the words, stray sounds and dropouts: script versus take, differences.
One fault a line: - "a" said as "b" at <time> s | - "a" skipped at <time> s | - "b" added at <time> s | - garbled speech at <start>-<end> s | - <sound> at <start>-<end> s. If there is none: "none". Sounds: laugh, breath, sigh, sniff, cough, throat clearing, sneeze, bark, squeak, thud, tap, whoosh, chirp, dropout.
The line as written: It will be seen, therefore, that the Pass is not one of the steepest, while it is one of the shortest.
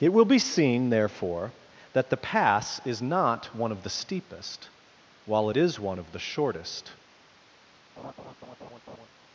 - laugh at 8.0-9.1 s